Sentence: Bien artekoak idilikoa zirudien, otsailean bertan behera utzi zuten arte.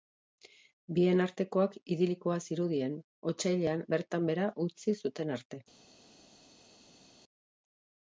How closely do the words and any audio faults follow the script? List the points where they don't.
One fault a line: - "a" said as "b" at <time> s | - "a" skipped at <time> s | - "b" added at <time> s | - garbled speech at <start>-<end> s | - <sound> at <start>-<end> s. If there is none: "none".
none